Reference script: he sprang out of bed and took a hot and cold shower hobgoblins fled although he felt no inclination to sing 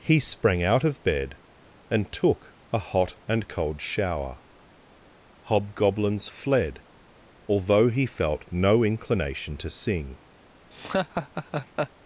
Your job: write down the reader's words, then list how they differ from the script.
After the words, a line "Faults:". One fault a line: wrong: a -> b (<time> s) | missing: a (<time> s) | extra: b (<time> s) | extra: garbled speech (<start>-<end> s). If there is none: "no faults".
he sprang out of bed and took a hot and cold shower hobgoblins fled although he felt no inclination to sing
Faults:
no faults